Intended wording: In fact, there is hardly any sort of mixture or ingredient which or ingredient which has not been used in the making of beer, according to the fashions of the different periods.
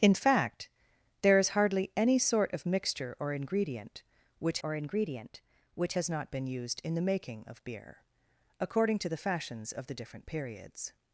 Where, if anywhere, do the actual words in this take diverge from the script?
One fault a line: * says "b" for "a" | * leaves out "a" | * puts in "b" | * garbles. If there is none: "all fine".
all fine